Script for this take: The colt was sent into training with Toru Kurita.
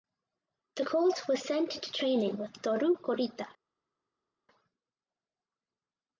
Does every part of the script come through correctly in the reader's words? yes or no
yes